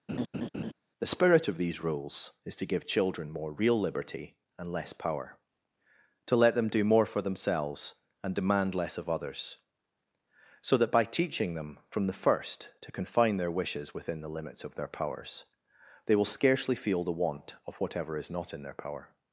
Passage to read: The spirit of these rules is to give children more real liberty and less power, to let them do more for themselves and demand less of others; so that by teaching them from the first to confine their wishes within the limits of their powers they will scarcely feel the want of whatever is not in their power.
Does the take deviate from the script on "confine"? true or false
false